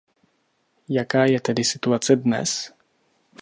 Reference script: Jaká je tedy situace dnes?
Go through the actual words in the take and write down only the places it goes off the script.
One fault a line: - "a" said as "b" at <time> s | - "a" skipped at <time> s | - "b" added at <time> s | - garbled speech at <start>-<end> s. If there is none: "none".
none